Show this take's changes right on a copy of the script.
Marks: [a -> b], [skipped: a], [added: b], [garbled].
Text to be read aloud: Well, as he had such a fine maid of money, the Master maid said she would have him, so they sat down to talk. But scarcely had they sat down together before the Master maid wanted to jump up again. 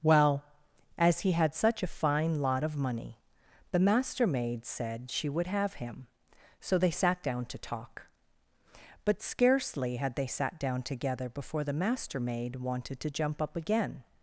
Well, as he had such a fine [maid -> lot] of money, the Master maid said she would have him, so they sat down to talk. But scarcely had they sat down together before the Master maid wanted to jump up again.